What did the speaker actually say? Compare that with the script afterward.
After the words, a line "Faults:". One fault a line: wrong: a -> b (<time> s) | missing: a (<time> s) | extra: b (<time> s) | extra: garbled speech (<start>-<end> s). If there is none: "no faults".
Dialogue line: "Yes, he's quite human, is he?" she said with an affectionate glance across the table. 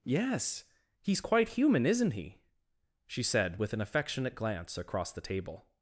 "Yes, he's quite human, isn't he?" she said with an affectionate glance across the table.
Faults:
wrong: is -> isn't (1.9 s)